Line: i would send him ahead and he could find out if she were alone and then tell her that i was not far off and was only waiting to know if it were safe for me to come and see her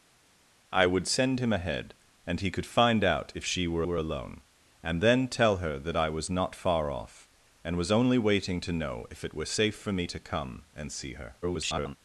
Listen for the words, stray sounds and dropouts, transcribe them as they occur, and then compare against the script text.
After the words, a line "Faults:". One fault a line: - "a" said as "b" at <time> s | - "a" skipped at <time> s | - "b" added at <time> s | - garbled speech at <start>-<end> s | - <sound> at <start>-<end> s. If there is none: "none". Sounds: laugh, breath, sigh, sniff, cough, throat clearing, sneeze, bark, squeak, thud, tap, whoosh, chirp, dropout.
i would send him ahead and he could find out if she were were alone and then tell her that i was not far off and was only waiting to know if it were safe for me to come and see her [garbled]
Faults:
- "were" added at 3.8 s
- garbled speech at 11.4-12.0 s